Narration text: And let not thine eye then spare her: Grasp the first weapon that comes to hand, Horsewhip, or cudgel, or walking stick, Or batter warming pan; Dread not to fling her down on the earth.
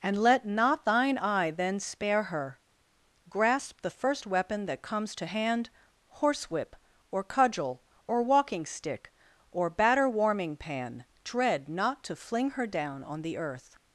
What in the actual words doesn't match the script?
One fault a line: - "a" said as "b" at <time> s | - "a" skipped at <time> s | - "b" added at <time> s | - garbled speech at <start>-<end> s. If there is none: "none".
none